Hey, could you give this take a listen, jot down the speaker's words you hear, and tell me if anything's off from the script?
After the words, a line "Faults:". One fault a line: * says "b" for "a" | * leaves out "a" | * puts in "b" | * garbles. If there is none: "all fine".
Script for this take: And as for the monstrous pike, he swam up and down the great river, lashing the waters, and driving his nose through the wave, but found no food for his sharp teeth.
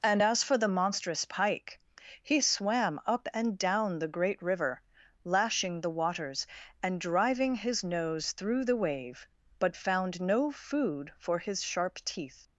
And as for the monstrous pike, he swam up and down the great river, lashing the waters, and driving his nose through the wave, but found no food for his sharp teeth.
Faults:
all fine